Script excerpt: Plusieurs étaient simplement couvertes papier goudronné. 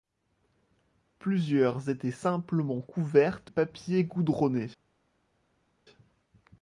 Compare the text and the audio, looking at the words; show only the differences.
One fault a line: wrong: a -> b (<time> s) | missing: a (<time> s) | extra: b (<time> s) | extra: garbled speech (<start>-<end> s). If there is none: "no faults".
no faults